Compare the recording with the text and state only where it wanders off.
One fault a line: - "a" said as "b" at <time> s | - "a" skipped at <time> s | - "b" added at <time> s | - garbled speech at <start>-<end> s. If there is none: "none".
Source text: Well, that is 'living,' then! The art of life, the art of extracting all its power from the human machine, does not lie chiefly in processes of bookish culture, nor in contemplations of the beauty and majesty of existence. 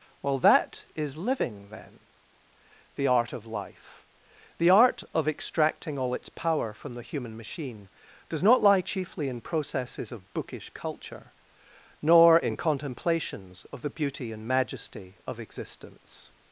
none